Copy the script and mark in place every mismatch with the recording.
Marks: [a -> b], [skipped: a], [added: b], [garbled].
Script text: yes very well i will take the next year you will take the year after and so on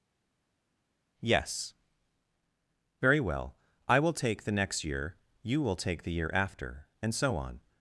yes very well i will take the next year you will take the year after and so on